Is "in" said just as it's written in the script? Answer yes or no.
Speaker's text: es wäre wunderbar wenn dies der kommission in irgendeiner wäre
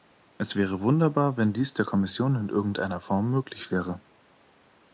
yes